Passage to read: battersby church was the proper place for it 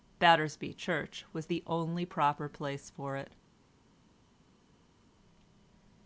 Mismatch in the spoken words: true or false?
true